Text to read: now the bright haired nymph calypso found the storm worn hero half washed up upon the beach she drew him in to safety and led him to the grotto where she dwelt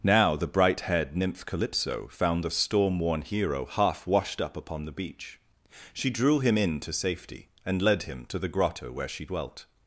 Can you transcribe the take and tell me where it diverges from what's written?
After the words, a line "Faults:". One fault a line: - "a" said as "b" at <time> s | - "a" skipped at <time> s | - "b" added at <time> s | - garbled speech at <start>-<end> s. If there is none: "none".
now the bright haired nymph calypso found the storm worn hero half washed up upon the beach she drew him in to safety and led him to the grotto where she dwelt
Faults:
none